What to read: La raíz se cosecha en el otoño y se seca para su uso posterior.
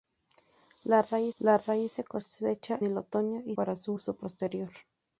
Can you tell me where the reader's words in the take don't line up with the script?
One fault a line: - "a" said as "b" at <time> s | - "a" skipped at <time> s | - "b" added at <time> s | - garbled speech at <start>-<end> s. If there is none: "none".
- "la raíz" added at 1.4 s
- "en" skipped at 2.8 s
- "se seca" skipped at 3.6 s